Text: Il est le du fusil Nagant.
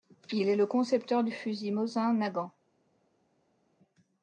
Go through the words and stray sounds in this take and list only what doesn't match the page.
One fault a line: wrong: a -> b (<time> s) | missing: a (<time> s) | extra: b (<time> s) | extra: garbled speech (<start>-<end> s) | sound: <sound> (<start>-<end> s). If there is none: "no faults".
extra: concepteur (0.7 s)
extra: Mosin (1.7 s)